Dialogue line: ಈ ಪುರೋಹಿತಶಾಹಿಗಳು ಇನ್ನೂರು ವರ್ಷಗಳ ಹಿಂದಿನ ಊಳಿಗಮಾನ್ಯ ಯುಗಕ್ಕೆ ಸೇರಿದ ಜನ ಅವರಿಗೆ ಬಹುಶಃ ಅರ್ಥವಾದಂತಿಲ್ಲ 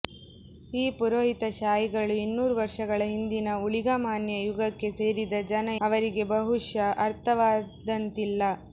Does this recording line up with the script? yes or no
yes